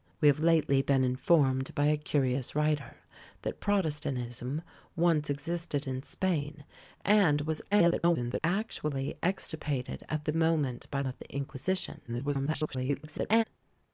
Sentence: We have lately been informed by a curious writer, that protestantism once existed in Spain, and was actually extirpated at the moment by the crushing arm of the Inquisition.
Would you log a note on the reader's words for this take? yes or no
yes